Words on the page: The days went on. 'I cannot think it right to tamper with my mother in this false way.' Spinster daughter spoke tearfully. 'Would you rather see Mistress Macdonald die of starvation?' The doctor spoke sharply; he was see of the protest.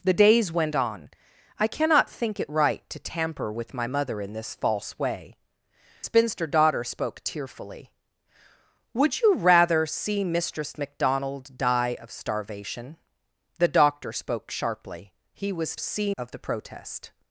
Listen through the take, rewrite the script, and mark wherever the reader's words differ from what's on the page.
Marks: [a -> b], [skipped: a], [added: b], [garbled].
The days went on. 'I cannot think it right to tamper with my mother in this false way.' Spinster daughter spoke tearfully. 'Would you rather see Mistress Macdonald die of starvation?' The doctor spoke sharply; he was see of the protest.